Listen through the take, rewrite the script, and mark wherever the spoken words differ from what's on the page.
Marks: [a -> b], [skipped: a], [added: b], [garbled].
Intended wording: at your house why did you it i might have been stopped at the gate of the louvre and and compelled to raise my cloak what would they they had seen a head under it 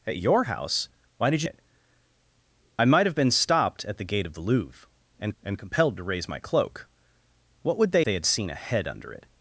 at your house why did you it i might have been stopped at the gate of the louvre and and compelled to raise my cloak what would they they had seen a head under it